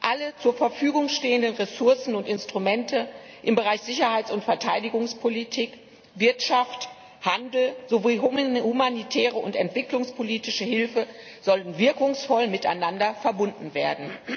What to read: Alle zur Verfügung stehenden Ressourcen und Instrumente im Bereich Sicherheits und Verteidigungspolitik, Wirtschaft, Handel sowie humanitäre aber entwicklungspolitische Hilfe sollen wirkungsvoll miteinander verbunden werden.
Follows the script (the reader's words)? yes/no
no